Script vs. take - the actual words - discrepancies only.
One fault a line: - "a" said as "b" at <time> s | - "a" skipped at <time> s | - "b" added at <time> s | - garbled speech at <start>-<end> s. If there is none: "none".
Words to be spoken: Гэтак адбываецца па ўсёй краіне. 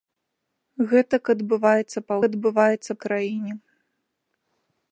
- "ўсёй" said as "адбываецца" at 2.3 s